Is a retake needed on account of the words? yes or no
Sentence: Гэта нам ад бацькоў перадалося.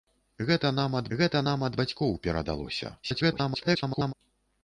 yes